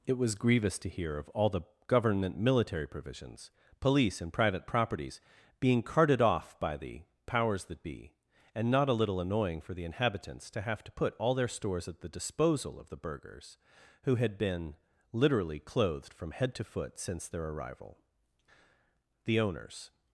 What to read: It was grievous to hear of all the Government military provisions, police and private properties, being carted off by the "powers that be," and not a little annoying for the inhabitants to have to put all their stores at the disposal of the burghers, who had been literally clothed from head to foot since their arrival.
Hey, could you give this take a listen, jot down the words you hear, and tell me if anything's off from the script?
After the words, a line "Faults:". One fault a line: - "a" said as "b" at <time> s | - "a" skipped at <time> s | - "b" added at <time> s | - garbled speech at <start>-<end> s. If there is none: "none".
It was grievous to hear of all the Government military provisions, police and private properties, being carted off by the "powers that be," and not a little annoying for the inhabitants to have to put all their stores at the disposal of the burghers, who had been literally clothed from head to foot since their arrival. The owners
Faults:
- "The owners" added at 19.2 s